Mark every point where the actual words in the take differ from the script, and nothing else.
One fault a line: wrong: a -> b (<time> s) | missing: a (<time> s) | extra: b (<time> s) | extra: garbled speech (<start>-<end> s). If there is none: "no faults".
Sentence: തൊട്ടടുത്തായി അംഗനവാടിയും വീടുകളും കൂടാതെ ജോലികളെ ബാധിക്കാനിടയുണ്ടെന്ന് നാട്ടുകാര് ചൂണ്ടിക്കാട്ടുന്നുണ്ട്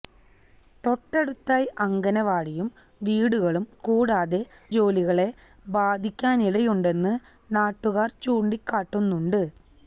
no faults